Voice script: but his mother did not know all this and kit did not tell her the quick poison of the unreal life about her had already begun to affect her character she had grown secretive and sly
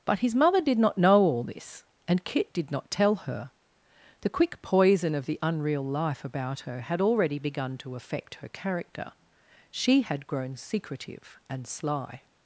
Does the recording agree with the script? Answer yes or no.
yes